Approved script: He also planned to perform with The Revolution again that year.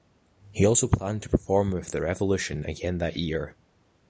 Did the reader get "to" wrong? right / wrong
right